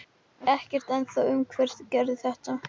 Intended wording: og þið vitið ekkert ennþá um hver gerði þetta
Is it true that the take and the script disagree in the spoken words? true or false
true